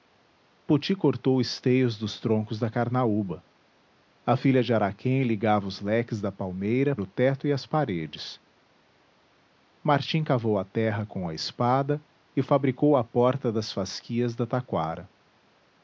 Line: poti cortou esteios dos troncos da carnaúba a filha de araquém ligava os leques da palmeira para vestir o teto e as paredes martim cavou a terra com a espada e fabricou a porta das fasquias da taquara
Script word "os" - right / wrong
right